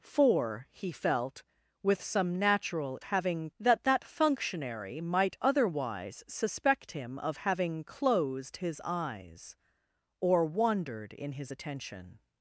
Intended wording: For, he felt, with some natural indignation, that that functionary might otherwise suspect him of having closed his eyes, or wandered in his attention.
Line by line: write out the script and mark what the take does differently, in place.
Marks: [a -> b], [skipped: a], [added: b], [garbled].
For, he felt, with some natural [indignation, -> having] that that functionary might otherwise suspect him of having closed his eyes, or wandered in his attention.